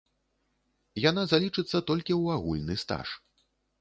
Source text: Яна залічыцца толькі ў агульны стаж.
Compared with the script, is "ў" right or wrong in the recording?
right